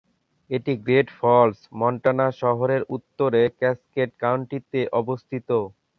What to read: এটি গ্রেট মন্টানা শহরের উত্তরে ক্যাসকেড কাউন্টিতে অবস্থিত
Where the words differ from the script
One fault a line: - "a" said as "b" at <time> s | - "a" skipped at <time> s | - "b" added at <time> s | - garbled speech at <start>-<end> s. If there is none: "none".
- "ফলস" added at 1.2 s